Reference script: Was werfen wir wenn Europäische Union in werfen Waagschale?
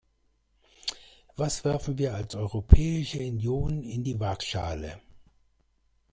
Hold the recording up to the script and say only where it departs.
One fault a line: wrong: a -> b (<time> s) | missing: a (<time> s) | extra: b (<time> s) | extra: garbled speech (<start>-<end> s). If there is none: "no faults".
wrong: wenn -> als (2.1 s)
wrong: werfen -> die (4.0 s)